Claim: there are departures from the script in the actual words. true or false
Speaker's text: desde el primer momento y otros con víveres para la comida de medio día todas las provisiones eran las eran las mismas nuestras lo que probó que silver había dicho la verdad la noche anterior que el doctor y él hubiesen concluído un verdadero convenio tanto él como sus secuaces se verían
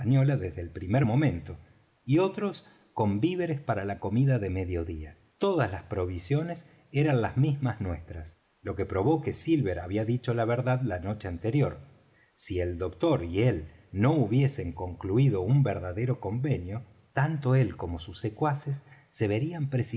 true